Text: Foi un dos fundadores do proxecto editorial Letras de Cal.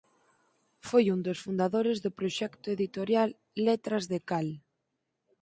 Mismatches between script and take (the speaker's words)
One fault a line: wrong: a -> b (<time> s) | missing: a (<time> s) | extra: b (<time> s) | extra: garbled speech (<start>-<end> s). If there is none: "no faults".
no faults